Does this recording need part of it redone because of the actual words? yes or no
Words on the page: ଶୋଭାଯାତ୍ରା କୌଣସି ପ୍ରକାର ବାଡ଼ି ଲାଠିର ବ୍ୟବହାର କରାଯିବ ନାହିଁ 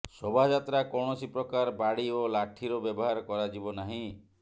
yes